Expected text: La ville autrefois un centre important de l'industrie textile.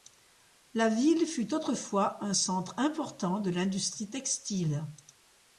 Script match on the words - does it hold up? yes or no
no